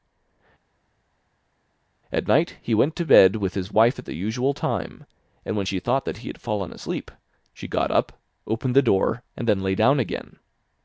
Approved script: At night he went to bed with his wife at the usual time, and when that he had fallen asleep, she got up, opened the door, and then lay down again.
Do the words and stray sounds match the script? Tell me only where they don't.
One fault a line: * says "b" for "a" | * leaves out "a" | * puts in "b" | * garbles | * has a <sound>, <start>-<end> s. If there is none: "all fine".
* puts in "she thought"